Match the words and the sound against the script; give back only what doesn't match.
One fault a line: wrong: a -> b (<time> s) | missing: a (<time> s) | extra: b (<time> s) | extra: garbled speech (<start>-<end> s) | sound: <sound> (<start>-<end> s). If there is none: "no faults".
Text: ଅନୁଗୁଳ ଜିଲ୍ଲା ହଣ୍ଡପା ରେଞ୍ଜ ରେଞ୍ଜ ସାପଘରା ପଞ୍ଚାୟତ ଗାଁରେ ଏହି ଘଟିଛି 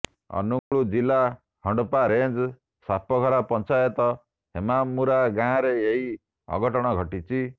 sound: dropout (0.6-0.7 s)
missing: ରେଞ୍ଜ (2.5 s)
extra: ହେମାମୁରା (4.5 s)
extra: ଅଘଟଣ (6.5 s)